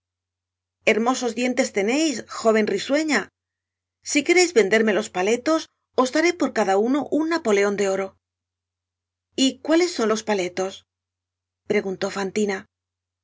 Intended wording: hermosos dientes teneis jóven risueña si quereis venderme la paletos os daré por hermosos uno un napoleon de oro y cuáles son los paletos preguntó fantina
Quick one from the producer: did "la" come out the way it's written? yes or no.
no